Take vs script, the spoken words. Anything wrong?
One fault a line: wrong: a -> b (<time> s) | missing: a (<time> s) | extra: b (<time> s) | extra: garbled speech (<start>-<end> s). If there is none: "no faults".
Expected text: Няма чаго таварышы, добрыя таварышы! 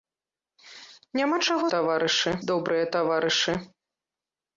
no faults